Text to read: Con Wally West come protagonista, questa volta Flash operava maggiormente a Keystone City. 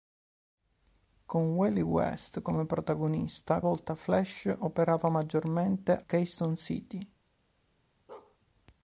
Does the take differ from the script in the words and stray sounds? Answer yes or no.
yes